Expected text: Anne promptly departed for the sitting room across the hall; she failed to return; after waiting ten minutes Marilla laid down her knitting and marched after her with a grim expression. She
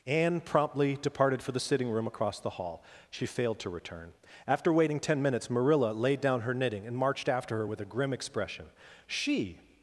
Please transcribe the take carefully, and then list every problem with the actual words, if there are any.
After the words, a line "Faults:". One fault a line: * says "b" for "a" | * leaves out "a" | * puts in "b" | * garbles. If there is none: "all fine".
Anne promptly departed for the sitting room across the hall; she failed to return; after waiting ten minutes Marilla laid down her knitting and marched after her with a grim expression. She
Faults:
all fine